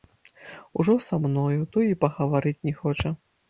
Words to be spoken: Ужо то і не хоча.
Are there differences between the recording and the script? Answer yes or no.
yes